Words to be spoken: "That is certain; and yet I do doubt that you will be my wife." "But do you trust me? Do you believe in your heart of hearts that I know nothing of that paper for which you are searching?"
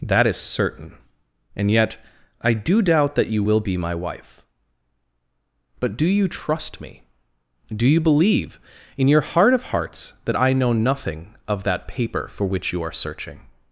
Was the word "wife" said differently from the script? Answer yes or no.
no